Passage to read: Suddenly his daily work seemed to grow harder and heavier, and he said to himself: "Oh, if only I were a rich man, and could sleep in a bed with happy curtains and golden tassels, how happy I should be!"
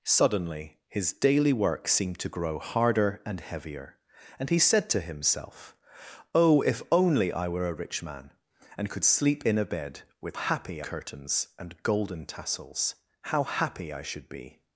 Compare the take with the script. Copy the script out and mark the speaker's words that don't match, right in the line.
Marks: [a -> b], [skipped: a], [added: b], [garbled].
Suddenly his daily work seemed to grow harder and heavier, and he said to himself: "Oh, if only I were a rich man, and could sleep in a bed with happy curtains and golden tassels, how happy I should be!"